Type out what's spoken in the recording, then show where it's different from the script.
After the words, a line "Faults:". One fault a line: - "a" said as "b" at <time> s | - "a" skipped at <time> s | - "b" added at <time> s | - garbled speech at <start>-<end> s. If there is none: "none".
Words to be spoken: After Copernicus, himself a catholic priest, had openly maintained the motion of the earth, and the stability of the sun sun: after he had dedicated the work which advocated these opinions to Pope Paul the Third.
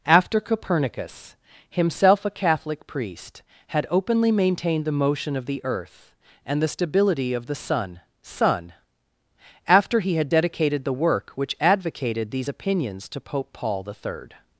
After Copernicus, himself a catholic priest, had openly maintained the motion of the earth, and the stability of the sun sun: after he had dedicated the work which advocated these opinions to Pope Paul the Third.
Faults:
none